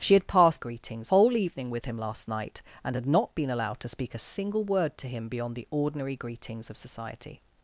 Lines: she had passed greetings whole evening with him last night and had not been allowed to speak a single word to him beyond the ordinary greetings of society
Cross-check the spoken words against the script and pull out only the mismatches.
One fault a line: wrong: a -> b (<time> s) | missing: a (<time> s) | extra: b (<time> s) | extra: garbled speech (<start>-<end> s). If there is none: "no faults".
no faults